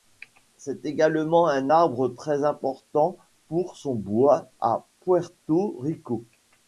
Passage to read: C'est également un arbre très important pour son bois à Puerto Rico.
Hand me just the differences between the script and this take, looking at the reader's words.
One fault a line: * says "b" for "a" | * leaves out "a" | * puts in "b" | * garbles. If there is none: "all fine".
all fine